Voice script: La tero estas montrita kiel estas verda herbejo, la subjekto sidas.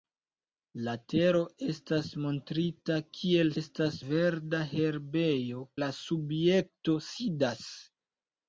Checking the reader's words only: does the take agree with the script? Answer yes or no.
yes